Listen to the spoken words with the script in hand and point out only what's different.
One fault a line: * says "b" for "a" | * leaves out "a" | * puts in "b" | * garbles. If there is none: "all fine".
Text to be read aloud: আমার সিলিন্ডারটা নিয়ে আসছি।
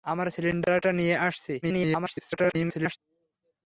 * garbles